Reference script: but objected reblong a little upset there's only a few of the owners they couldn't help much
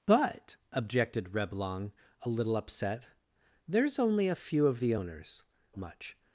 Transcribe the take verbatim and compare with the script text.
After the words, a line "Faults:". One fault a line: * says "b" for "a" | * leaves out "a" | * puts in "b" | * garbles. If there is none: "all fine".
but objected reblong a little upset there's only a few of the owners much
Faults:
* leaves out "they couldn't help"